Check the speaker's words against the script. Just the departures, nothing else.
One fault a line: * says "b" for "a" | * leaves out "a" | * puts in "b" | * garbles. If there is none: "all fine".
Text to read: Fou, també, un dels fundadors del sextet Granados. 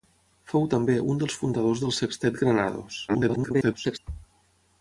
* garbles